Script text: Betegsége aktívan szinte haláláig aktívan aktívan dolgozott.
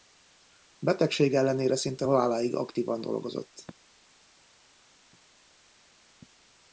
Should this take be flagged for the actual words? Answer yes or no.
yes